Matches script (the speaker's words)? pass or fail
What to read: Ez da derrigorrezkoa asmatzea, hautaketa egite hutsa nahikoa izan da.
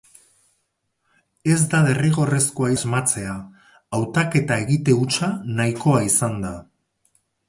pass